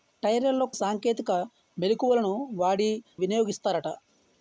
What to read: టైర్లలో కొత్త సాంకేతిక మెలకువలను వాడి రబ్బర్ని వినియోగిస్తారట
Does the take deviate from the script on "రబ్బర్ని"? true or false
true